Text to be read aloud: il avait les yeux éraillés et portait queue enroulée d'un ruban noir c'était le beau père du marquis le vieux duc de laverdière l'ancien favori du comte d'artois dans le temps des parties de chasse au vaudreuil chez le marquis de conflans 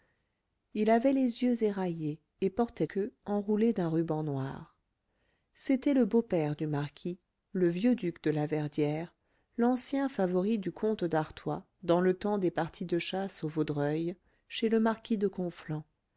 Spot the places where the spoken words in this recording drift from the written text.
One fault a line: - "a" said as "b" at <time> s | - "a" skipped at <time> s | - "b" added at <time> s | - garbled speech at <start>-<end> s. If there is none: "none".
none